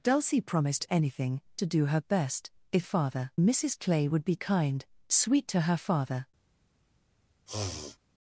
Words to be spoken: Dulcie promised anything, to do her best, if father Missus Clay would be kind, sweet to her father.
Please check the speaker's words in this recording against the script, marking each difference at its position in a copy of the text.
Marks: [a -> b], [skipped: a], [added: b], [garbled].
Dulcie promised anything, to do her best, if father Missus Clay would be kind, sweet to her father.